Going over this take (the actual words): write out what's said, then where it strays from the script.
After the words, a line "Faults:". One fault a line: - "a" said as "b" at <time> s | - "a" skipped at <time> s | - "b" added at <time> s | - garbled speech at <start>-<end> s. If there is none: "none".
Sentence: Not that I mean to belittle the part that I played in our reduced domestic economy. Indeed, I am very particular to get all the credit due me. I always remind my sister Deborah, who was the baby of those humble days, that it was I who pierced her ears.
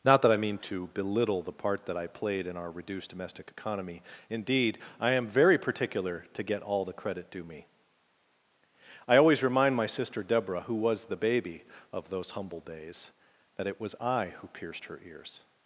Not that I mean to belittle the part that I played in our reduced domestic economy. Indeed, I am very particular to get all the credit due me. I always remind my sister Deborah, who was the baby of those humble days, that it was I who pierced her ears.
Faults:
none